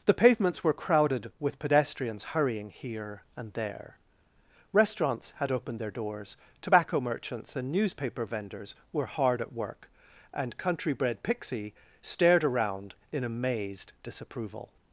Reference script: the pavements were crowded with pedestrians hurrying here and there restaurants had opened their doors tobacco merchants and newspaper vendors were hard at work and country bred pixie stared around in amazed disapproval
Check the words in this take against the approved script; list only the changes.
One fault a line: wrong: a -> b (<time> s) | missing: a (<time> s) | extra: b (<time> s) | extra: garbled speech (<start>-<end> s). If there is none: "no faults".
no faults